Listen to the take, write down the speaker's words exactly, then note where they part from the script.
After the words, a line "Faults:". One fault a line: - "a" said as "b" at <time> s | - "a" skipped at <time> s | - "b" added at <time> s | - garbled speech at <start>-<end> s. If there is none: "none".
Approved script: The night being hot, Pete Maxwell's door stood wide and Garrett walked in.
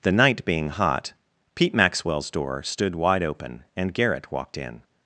The night being hot, Pete Maxwell's door stood wide open, and Garrett walked in.
Faults:
- "open" added at 3.2 s